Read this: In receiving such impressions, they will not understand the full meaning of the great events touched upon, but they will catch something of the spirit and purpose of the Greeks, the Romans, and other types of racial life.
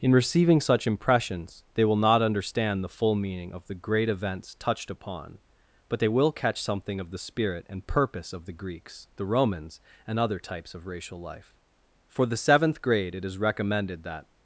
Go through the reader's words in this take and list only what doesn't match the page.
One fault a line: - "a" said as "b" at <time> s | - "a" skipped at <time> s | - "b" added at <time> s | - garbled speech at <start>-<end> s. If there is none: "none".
- "For the seventh grade it is recommended that" added at 12.1 s